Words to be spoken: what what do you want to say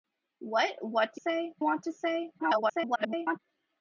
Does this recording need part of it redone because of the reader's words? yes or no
yes